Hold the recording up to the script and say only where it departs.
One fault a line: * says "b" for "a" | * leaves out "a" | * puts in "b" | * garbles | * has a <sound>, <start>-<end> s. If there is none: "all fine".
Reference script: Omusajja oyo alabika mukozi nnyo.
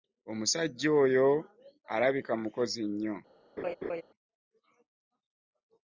* has a laugh, 3.6-4.0 s